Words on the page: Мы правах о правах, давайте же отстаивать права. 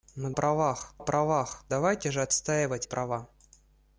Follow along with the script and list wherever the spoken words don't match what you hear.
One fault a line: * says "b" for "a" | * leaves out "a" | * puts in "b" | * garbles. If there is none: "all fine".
all fine